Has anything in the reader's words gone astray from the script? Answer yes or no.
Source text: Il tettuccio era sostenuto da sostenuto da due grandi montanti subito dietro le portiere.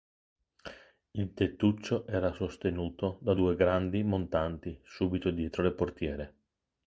yes